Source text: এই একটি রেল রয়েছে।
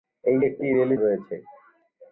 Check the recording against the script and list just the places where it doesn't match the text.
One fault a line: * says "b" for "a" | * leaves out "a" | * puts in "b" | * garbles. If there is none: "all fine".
all fine